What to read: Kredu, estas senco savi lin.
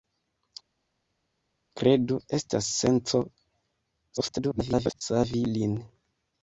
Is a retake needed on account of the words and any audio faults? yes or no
yes